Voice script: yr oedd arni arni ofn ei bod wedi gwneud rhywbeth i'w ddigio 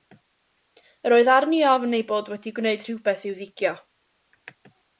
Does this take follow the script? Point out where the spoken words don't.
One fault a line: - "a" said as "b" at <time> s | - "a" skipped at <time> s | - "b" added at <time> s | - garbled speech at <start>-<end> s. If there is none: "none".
- "arni" skipped at 1.6 s